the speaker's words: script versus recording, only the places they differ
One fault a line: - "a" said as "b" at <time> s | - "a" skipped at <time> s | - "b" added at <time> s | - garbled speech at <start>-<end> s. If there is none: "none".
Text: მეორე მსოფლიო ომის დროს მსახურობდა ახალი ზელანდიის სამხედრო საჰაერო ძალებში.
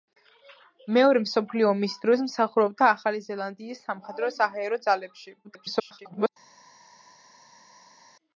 - garbled speech at 5.4-6.3 s